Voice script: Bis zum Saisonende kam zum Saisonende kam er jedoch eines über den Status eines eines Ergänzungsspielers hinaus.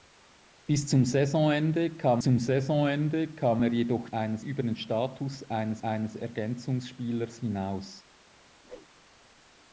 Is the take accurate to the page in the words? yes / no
yes